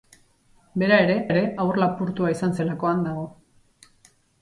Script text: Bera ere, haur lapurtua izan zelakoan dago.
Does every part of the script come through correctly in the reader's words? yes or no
no